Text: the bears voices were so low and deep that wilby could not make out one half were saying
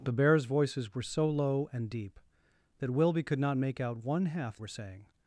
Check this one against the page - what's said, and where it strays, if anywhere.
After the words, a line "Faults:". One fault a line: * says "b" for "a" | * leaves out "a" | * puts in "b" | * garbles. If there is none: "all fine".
the bears voices were so low and deep that wilby could not make out one half were saying
Faults:
all fine